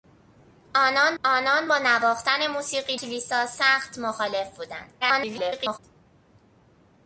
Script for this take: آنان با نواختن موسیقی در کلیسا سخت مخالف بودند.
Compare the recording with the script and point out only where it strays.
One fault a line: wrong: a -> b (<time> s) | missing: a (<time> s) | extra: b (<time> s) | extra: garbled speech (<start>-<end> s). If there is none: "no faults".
extra: آنان (1.2 s)
missing: در (3.0 s)
extra: garbled speech (5.0-5.8 s)